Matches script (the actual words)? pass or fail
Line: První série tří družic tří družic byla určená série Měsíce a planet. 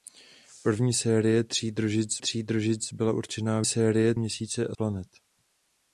pass